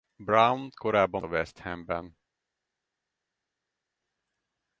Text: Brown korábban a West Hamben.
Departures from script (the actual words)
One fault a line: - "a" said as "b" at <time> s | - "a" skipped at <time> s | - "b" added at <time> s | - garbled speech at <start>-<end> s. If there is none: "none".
none